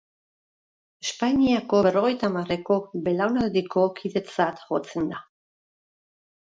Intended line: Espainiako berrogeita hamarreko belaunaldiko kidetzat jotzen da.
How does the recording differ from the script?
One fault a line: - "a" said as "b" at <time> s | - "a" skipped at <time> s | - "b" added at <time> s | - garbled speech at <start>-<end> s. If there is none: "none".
none